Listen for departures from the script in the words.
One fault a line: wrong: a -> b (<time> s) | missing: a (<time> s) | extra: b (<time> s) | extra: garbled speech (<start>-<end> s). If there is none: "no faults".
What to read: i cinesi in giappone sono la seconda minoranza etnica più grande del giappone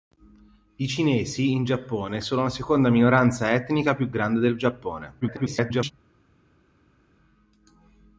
extra: garbled speech (5.2-5.9 s)